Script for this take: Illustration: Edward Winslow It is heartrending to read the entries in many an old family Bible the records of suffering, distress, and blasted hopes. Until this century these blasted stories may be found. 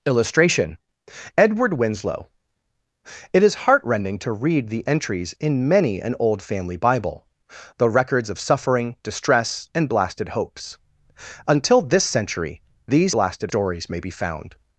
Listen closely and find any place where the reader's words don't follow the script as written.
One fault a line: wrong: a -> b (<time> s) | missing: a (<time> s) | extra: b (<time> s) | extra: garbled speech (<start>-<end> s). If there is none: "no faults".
no faults